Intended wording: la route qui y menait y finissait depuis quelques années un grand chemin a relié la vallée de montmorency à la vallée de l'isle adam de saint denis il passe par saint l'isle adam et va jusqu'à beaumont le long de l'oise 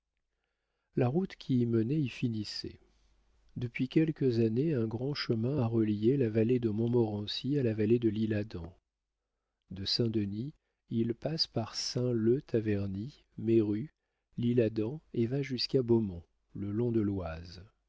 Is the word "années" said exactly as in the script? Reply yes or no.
yes